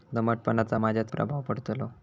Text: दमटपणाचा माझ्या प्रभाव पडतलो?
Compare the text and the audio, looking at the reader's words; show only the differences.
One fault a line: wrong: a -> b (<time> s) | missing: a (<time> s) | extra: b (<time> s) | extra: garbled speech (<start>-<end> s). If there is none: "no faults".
no faults